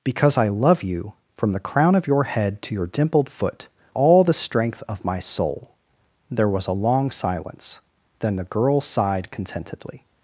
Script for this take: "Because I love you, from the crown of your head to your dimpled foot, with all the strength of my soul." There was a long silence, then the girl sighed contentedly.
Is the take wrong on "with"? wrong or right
wrong